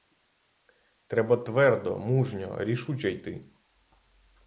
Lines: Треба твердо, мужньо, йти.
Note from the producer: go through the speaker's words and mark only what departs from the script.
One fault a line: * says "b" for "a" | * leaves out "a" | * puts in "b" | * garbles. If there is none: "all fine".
* puts in "рішуче"